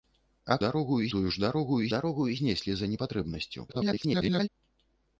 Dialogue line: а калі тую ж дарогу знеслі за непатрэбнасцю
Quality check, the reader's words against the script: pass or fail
fail